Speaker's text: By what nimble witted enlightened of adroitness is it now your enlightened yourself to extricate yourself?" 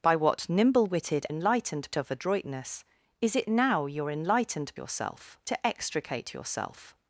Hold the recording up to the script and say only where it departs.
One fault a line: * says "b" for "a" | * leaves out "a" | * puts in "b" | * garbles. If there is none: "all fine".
all fine